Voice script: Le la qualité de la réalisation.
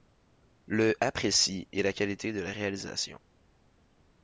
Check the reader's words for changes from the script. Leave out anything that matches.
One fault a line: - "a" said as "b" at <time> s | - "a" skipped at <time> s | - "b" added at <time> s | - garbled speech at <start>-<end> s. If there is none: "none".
- "apprécie et" added at 1.0 s